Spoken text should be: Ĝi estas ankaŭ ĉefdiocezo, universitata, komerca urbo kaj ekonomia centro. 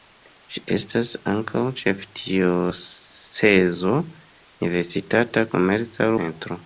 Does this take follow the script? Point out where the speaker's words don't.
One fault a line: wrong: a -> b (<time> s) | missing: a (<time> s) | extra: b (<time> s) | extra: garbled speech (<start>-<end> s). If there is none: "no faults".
missing: urbo kaj ekonomia (6.1 s)